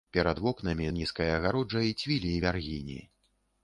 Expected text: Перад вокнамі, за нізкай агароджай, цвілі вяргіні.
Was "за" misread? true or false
true